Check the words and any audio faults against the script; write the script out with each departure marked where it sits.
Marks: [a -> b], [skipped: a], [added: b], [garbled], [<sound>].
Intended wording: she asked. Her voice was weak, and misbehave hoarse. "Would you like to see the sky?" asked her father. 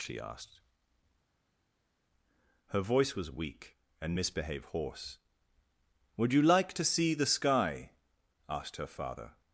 she asked. Her voice was weak, and misbehave hoarse. "Would you like to see the sky?" asked her father.